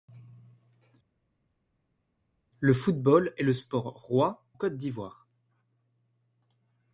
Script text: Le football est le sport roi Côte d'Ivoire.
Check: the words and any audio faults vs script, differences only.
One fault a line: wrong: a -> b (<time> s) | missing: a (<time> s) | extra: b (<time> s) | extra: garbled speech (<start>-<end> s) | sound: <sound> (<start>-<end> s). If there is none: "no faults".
no faults